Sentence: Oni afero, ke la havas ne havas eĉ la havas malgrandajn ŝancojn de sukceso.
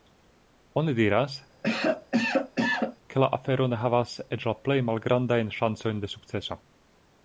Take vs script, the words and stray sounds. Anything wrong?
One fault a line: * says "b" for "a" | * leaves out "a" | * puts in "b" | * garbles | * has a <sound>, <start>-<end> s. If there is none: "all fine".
* says "diras" for "afero"
* has a cough, 1.6-3.0 s
* says "afero" for "havas"
* says "plej" for "havas"